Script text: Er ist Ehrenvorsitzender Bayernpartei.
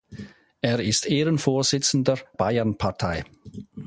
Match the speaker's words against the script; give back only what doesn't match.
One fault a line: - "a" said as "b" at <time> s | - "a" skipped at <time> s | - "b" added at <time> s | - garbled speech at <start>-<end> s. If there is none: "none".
none